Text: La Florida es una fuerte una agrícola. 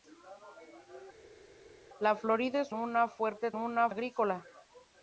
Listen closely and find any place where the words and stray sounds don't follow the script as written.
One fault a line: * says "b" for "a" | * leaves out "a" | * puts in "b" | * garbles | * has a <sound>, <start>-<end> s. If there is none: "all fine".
all fine